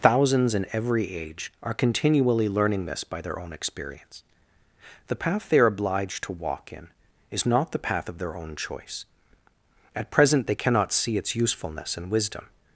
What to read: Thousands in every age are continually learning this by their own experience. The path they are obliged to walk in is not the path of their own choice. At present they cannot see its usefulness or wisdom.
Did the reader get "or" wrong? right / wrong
wrong